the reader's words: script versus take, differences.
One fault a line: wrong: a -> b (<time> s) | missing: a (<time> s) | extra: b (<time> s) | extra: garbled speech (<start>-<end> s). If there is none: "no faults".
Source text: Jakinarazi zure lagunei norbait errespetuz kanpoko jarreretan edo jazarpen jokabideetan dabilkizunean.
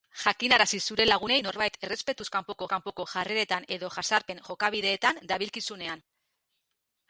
extra: kanpoko (2.7 s)